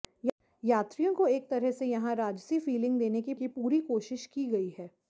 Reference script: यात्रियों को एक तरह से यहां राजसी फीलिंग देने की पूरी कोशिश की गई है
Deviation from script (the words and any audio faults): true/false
true